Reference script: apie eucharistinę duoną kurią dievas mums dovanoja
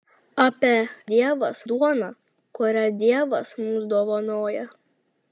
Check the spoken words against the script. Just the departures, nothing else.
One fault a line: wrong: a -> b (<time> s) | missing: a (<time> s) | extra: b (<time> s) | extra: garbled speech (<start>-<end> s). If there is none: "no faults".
wrong: eucharistinę -> dievas (1.1 s)